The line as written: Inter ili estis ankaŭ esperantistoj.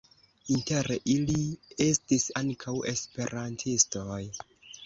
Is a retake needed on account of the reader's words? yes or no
no